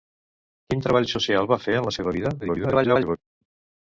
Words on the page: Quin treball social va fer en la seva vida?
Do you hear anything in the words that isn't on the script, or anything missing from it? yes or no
yes